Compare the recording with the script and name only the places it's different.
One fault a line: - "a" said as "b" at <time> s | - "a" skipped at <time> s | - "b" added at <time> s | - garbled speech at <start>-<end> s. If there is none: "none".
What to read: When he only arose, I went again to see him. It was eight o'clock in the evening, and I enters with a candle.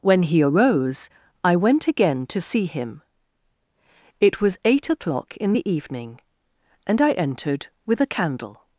- "only" skipped at 0.4 s
- "enters" said as "entered" at 7.1 s